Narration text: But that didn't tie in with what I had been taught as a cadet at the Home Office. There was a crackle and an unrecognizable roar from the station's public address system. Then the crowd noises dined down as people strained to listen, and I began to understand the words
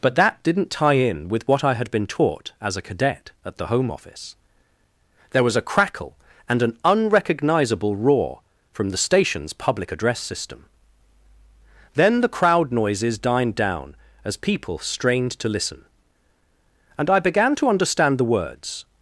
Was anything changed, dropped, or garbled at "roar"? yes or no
no